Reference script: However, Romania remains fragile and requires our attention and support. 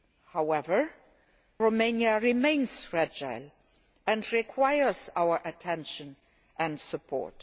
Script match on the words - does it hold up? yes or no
yes